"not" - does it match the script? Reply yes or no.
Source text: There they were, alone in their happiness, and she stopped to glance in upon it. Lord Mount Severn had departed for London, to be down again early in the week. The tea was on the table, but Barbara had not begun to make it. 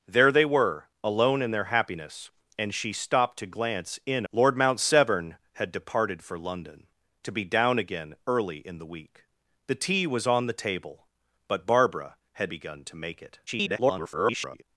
no